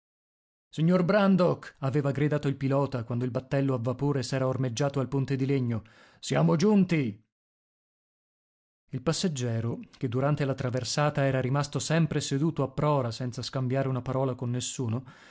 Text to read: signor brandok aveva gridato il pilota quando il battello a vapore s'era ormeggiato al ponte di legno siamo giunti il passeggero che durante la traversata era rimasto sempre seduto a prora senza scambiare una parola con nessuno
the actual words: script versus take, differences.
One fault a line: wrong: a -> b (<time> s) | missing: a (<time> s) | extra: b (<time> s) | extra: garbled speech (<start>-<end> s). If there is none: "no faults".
no faults